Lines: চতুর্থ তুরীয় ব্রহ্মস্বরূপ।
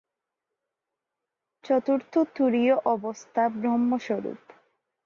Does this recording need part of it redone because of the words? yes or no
yes